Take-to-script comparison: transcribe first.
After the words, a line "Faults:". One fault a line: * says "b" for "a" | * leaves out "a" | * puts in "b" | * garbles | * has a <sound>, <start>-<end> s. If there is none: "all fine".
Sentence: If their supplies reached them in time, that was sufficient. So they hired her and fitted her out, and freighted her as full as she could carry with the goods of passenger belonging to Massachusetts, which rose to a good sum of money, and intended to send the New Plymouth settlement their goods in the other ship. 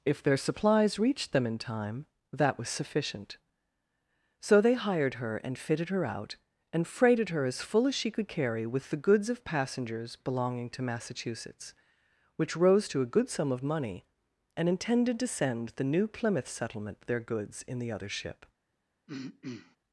If their supplies reached them in time, that was sufficient. So they hired her and fitted her out, and freighted her as full as she could carry with the goods of passengers belonging to Massachusetts, which rose to a good sum of money, and intended to send the New Plymouth settlement their goods in the other ship.
Faults:
* says "passengers" for "passenger"
* has a throat clearing, 19.1-19.8 s